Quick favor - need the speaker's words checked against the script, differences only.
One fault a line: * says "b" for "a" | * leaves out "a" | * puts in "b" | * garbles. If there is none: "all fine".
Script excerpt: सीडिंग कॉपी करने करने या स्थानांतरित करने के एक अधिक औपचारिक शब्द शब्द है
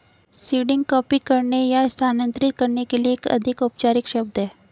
* leaves out "करने"
* puts in "लिए"
* leaves out "शब्द"